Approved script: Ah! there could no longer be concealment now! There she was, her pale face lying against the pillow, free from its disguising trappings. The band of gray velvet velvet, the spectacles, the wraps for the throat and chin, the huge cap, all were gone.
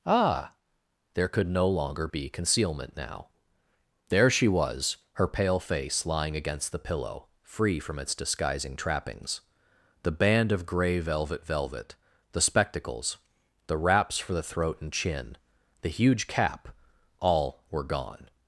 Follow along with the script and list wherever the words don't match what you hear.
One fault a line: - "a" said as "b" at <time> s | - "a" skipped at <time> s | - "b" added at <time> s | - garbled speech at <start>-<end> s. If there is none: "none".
none